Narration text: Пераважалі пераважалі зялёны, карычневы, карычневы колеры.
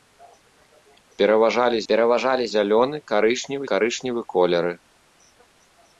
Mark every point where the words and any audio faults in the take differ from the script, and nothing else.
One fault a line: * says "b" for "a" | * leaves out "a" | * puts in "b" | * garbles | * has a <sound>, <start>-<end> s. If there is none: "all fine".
all fine